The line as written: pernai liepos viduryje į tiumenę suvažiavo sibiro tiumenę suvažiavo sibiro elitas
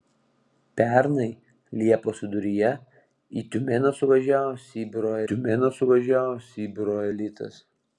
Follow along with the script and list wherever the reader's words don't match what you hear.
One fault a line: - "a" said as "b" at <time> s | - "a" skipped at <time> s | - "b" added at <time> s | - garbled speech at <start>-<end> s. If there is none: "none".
none